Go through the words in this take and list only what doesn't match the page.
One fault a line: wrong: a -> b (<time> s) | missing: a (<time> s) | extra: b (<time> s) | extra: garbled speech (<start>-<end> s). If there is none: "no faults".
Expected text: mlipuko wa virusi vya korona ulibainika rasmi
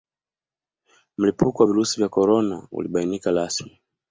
no faults